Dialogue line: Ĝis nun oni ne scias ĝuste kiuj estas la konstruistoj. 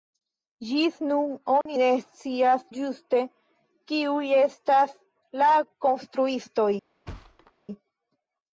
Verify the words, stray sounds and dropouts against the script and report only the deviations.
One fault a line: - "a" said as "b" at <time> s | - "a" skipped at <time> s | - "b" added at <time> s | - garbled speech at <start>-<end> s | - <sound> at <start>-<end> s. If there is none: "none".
- dropout at 1.6-1.7 s
- thud at 7.1-7.5 s